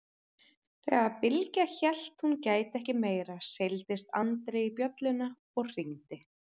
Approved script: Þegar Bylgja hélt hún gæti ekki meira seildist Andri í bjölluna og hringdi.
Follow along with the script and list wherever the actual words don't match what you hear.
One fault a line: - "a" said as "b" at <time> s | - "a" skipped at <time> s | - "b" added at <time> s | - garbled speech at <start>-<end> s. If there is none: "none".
none